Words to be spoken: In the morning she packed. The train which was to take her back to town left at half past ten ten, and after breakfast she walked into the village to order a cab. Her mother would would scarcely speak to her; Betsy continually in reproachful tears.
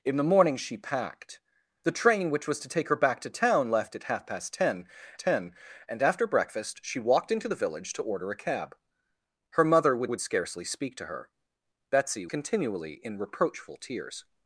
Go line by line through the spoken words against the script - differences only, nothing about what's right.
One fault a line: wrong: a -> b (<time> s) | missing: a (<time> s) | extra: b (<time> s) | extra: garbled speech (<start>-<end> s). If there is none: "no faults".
no faults